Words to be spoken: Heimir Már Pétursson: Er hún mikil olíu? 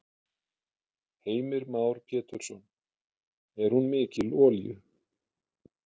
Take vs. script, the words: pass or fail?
pass